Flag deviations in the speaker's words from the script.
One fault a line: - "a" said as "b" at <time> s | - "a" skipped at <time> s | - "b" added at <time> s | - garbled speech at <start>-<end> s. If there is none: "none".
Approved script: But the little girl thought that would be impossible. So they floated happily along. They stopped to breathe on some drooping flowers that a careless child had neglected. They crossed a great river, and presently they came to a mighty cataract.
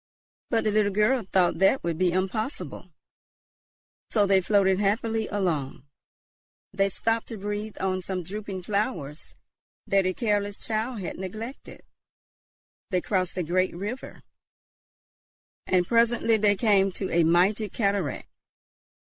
none